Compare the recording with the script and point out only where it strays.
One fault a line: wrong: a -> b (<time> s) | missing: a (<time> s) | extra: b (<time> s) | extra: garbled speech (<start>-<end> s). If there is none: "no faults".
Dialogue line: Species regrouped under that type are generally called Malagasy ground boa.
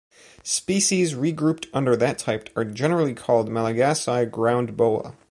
no faults